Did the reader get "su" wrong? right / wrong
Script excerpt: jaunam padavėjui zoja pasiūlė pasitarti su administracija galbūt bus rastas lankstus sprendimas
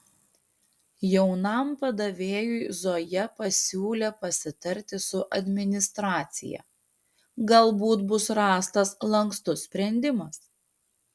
right